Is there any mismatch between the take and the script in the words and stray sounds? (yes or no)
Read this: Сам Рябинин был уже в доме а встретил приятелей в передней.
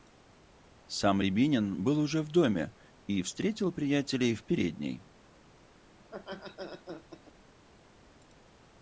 yes